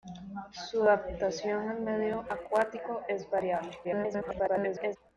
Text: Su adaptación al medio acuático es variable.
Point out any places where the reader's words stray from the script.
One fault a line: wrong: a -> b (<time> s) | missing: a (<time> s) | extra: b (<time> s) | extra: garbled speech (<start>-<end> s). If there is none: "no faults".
extra: garbled speech (3.8-5.0 s)